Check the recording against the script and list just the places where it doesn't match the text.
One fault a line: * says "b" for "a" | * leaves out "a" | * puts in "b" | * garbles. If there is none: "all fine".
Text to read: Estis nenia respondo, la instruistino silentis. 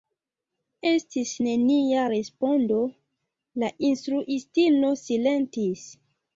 all fine